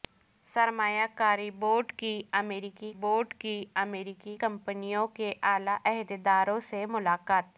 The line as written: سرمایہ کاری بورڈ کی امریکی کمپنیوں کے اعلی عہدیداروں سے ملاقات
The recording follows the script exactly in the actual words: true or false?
false